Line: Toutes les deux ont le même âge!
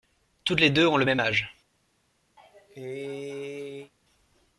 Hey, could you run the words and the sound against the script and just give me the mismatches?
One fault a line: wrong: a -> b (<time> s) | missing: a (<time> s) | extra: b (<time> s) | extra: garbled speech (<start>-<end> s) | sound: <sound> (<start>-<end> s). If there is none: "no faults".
sound: cough (2.4-3.9 s)